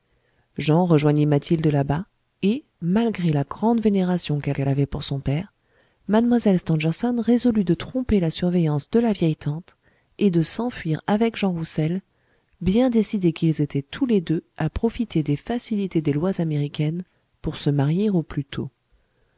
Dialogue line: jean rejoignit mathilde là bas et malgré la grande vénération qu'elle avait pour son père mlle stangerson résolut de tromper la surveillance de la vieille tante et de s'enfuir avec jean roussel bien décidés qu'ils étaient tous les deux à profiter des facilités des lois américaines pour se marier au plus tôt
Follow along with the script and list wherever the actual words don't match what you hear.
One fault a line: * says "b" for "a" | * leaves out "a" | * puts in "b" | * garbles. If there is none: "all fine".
* puts in "qu'elle"